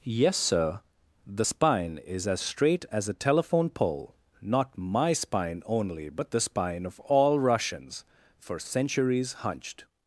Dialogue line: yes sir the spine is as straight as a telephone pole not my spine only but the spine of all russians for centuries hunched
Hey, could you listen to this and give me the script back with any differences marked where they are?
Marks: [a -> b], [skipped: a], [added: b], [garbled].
yes sir the spine is as straight as a telephone pole not my spine only but the spine of all russians for centuries hunched